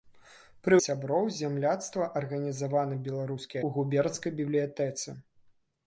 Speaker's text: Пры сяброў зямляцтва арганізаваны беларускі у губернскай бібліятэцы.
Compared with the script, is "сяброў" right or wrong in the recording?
right